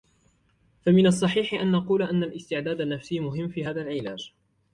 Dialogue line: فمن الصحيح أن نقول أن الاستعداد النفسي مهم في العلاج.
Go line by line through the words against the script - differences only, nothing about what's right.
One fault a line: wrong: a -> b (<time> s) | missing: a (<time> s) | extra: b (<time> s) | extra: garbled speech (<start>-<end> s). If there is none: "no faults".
extra: هذا (3.6 s)